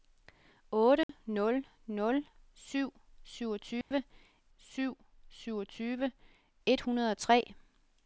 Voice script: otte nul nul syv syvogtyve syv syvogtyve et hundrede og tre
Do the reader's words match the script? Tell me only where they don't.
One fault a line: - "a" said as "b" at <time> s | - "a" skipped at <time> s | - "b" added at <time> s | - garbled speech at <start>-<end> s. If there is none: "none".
none